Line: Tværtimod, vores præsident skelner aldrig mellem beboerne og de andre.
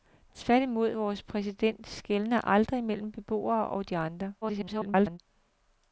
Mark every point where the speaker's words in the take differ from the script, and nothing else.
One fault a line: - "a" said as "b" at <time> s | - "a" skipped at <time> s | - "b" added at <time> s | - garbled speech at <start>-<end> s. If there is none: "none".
- garbled speech at 4.4-5.2 s